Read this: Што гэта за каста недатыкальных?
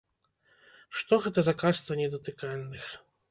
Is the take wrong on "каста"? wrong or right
right